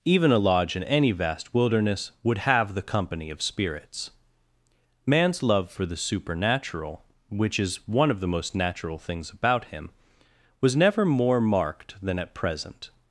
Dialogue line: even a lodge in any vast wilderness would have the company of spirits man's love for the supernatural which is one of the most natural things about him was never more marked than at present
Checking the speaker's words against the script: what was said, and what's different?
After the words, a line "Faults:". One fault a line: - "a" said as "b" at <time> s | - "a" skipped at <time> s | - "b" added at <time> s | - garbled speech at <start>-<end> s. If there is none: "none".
even a lodge in any vast wilderness would have the company of spirits man's love for the supernatural which is one of the most natural things about him was never more marked than at present
Faults:
none